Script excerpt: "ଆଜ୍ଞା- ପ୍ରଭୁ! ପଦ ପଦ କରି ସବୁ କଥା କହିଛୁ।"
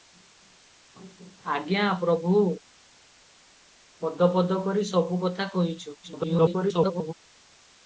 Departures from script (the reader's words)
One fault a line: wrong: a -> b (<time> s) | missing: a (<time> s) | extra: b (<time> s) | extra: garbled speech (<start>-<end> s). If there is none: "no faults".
extra: garbled speech (6.0-7.1 s)